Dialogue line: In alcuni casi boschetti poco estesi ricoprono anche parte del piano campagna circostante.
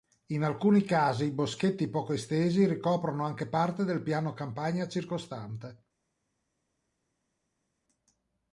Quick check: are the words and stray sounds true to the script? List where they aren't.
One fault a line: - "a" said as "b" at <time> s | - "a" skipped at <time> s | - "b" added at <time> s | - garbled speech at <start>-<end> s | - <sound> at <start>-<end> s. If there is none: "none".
none